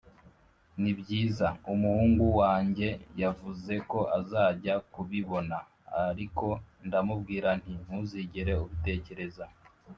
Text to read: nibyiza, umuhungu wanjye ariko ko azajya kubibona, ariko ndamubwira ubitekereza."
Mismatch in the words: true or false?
true